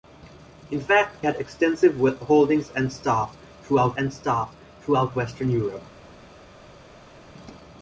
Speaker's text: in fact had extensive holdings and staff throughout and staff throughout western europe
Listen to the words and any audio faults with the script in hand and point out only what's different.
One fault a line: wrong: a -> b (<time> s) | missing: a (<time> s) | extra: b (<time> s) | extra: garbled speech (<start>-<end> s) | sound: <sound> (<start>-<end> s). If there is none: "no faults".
no faults